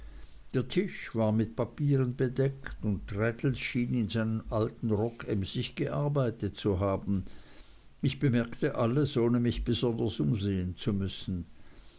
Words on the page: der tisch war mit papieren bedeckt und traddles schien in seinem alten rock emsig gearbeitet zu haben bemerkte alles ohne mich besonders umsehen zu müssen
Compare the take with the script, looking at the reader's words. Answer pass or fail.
fail